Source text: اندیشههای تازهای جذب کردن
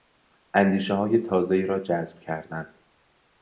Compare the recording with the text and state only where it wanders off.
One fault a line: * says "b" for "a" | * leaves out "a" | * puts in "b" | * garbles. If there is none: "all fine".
* puts in "را"